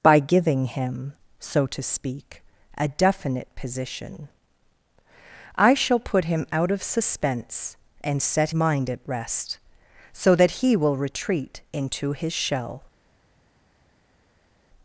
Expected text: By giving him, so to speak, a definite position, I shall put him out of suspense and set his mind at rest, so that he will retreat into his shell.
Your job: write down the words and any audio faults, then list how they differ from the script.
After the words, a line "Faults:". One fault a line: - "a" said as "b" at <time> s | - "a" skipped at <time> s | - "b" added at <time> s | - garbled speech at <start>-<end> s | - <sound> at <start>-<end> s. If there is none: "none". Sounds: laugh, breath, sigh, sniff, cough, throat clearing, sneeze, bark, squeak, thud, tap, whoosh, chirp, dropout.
By giving him, so to speak, a definite position, I shall put him out of suspense and set mind at rest, so that he will retreat into his shell.
Faults:
- "his" skipped at 8.5 s